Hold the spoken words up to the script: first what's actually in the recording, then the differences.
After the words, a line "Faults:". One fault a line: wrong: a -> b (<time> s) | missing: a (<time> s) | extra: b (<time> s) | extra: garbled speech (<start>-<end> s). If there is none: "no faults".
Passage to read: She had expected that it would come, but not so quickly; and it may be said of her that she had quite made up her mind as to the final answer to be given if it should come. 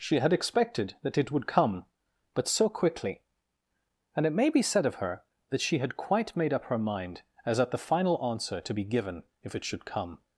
She had expected that it would come, but so quickly; and it may be said of her that she had quite made up her mind as at the final answer to be given if it should come.
Faults:
missing: not (2.5 s)
wrong: to -> at (7.6 s)